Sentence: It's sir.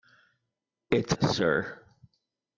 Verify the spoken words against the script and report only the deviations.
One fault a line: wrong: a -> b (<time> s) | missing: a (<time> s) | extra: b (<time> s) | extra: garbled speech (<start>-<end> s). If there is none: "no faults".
no faults